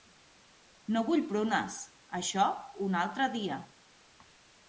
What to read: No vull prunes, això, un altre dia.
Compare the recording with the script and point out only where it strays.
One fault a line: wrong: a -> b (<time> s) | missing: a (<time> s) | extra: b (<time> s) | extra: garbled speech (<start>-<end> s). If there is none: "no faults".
no faults